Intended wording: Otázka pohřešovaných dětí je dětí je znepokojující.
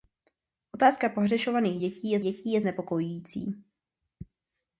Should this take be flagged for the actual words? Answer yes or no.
no